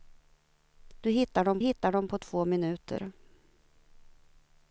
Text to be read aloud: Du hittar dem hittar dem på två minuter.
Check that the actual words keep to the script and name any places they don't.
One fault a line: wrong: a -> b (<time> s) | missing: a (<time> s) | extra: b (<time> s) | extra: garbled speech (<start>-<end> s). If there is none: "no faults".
no faults